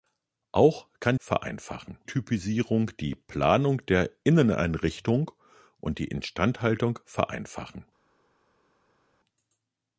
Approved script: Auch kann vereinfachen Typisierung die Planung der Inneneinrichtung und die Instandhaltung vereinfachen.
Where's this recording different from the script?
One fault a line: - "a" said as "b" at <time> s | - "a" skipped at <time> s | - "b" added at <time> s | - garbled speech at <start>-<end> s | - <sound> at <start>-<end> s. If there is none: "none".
none